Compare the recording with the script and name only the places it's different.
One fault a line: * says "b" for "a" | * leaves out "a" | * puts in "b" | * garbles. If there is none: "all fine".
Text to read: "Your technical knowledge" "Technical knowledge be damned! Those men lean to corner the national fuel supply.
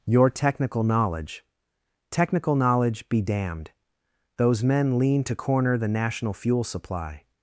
all fine